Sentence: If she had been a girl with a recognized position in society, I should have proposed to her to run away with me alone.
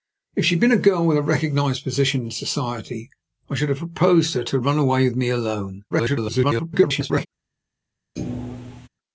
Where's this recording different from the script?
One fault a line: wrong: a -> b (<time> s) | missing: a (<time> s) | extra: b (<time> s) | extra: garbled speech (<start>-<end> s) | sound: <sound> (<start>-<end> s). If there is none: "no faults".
extra: garbled speech (5.9-7.3 s)
sound: thud (8.2-8.9 s)